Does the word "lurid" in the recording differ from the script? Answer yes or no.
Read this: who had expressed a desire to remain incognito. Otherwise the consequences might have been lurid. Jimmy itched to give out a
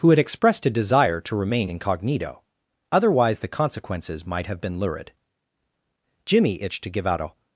no